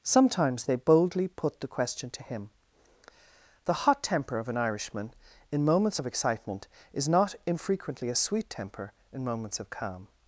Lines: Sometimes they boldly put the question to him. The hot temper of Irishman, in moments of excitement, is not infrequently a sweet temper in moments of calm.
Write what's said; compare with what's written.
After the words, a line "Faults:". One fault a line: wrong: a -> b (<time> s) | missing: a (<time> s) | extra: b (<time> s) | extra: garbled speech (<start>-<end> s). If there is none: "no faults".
Sometimes they boldly put the question to him. The hot temper of an Irishman, in moments of excitement, is not infrequently a sweet temper in moments of calm.
Faults:
extra: an (4.5 s)